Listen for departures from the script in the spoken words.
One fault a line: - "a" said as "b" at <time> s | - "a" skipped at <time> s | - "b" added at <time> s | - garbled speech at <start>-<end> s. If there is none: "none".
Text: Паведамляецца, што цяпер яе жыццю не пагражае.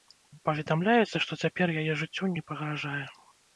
none